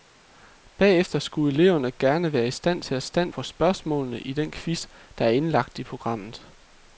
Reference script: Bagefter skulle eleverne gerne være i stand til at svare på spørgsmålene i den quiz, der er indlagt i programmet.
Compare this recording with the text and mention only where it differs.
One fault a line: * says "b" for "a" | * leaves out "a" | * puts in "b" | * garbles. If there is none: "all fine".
* says "stand" for "svare"